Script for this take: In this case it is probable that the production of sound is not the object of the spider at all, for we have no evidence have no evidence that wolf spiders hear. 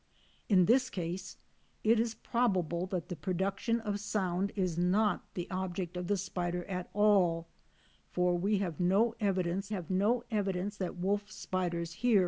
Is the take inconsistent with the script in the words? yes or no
no